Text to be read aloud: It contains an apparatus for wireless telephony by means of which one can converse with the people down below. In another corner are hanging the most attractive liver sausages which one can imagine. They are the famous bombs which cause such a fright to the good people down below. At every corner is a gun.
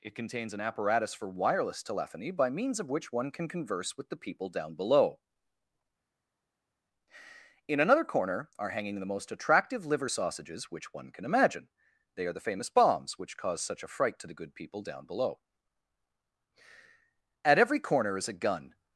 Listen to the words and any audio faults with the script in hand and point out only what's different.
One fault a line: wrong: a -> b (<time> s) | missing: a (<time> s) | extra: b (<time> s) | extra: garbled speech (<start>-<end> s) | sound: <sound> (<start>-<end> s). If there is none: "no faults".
no faults